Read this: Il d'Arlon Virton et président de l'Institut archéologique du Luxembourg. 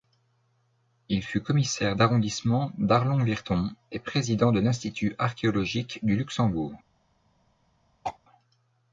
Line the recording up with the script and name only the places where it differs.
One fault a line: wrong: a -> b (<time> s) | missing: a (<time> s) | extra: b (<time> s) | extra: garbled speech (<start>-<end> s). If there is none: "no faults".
extra: fut commissaire d'arrondissement (1.2 s)